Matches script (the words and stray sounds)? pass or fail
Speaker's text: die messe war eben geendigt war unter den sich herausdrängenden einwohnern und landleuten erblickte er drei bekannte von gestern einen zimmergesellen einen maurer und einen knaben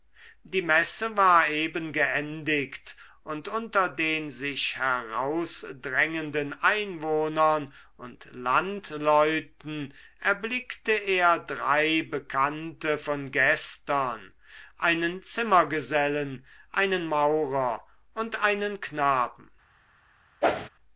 fail